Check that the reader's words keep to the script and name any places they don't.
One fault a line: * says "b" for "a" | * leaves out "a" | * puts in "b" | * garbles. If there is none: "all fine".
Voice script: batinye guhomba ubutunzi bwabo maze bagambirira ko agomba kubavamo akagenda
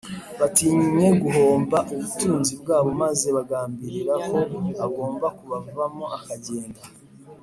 all fine